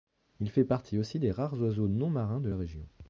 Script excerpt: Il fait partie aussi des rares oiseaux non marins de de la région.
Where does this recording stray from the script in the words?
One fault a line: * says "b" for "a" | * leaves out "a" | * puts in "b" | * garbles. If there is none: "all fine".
* leaves out "de"